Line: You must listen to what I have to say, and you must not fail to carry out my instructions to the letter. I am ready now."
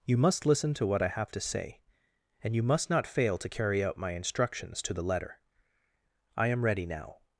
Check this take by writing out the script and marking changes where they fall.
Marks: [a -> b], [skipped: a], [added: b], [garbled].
You must listen to what I have to say, and you must not fail to carry out my instructions to the letter. I am ready now."